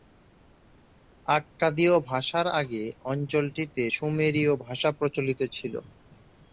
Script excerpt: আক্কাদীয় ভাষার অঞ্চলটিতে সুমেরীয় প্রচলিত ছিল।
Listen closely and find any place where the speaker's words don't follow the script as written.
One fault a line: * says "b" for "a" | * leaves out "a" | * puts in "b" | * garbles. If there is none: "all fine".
* puts in "আগে"
* puts in "ভাষা"